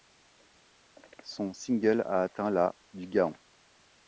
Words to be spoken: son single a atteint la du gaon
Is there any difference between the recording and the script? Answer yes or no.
no